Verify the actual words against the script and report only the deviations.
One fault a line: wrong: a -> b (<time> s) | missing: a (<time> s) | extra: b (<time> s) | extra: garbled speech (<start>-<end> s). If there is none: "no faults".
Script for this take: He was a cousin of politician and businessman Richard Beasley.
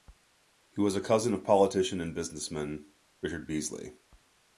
no faults